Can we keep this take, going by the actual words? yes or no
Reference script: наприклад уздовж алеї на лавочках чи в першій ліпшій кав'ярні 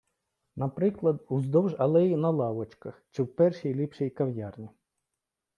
yes